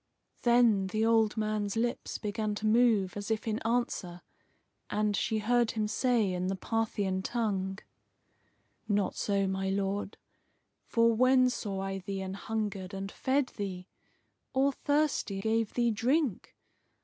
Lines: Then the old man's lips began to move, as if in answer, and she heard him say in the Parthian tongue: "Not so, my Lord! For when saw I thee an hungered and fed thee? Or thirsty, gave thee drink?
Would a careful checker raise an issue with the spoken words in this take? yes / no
no